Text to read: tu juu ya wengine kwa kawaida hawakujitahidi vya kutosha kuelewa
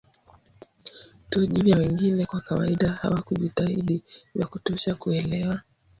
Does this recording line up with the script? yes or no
yes